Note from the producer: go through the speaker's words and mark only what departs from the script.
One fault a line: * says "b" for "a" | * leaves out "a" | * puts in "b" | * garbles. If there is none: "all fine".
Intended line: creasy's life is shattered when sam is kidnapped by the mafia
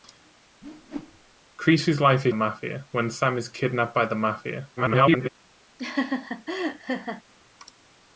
* says "mafia" for "shattered"
* garbles